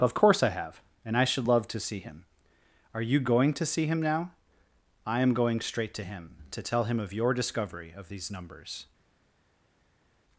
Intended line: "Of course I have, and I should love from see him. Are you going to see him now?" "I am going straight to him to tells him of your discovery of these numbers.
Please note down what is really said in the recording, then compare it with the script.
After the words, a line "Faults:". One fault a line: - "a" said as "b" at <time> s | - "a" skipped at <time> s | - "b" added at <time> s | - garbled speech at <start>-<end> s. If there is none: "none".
"Of course I have, and I should love to see him. Are you going to see him now?" "I am going straight to him to tell him of your discovery of these numbers.
Faults:
- "from" said as "to" at 1.7 s
- "tells" said as "tell" at 6.6 s